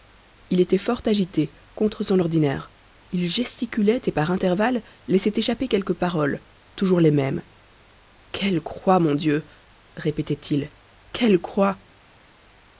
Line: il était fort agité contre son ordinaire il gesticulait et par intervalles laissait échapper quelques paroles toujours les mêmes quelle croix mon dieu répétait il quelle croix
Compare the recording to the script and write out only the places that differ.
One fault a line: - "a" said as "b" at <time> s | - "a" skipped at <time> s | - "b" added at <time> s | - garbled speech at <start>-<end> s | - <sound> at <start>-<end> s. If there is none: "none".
none